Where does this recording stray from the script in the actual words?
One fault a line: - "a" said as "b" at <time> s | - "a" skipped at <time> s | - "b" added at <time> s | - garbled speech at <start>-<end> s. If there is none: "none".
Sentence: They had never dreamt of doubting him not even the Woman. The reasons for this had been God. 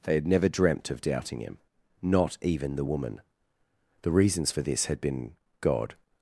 none